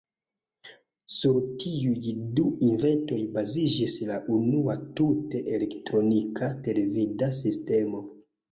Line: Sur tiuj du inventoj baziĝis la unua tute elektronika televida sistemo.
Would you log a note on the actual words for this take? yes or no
no